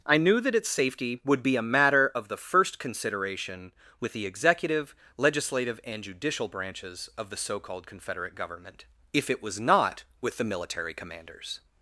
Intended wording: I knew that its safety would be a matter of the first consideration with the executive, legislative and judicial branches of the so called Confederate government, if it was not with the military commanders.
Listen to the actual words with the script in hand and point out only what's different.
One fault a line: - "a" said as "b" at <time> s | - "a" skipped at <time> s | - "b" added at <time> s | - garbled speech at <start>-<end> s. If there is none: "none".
none